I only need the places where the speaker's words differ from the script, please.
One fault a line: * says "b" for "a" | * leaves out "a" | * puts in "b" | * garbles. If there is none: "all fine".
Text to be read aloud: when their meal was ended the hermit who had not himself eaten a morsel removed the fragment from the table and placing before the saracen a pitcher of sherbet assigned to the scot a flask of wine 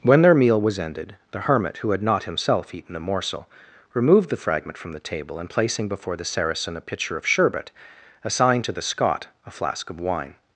all fine